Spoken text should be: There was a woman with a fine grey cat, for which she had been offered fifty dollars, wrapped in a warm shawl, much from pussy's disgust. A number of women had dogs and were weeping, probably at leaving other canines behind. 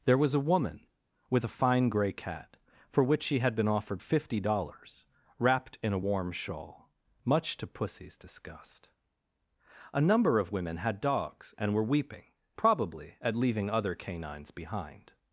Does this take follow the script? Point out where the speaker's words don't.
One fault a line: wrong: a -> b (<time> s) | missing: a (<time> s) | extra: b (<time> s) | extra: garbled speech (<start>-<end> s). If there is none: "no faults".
wrong: from -> to (7.6 s)